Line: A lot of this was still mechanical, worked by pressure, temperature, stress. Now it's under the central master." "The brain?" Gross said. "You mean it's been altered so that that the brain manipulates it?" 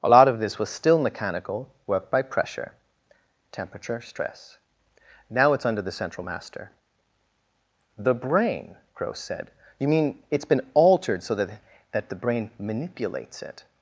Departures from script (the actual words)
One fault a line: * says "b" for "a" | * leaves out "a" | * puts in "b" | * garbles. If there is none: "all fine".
all fine